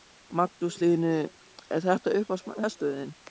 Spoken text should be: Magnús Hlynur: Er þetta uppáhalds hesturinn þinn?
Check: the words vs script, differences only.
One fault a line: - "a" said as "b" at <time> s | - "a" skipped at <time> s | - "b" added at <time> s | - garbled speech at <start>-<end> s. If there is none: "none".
none